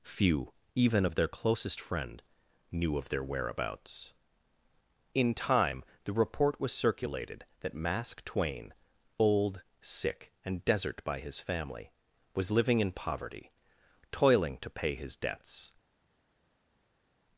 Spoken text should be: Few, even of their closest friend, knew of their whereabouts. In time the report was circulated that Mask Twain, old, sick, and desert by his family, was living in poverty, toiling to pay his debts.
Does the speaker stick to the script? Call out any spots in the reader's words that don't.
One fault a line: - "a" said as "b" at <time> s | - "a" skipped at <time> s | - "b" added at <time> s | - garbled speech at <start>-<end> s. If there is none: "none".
none